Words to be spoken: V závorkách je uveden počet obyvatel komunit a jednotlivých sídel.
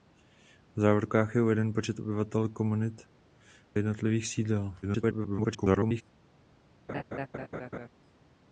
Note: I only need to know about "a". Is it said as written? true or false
false